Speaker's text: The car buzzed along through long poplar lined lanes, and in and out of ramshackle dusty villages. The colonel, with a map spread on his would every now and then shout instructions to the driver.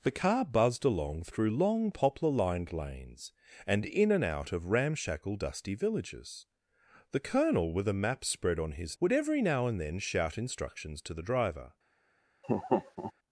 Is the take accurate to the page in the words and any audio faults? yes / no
no